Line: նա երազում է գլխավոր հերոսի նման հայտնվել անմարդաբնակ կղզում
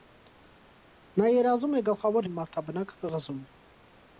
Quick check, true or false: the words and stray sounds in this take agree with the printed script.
false